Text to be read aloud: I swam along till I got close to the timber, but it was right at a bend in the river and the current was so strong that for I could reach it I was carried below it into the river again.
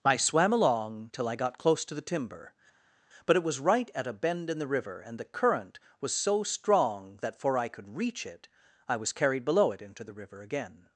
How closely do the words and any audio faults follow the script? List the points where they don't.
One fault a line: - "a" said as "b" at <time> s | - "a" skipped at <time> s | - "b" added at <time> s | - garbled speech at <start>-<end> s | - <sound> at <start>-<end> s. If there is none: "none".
none